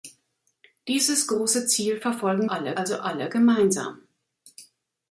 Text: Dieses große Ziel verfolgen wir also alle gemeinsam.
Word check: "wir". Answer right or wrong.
wrong